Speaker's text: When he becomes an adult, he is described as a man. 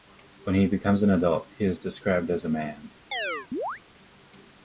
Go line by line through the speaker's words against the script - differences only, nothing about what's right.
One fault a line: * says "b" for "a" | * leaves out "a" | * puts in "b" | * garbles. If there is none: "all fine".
all fine